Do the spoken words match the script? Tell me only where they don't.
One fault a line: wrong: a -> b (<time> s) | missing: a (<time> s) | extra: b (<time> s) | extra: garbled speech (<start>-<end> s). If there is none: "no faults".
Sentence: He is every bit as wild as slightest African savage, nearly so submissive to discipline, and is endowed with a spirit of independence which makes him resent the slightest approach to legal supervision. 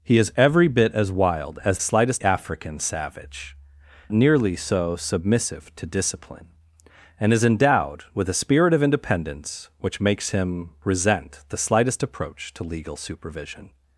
no faults